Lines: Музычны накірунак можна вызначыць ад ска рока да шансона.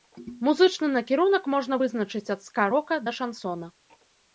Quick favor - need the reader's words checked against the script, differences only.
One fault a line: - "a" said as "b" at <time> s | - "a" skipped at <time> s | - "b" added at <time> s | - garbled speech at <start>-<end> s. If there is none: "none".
none